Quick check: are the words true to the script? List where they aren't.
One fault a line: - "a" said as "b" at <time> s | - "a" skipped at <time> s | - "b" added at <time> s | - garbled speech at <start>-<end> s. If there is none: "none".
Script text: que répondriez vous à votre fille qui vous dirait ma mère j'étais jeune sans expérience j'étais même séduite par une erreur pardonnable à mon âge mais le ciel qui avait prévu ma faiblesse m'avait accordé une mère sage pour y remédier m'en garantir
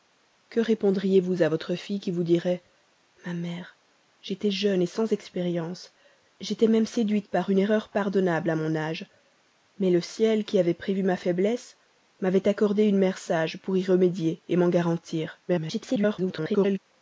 - garbled speech at 15.5-16.8 s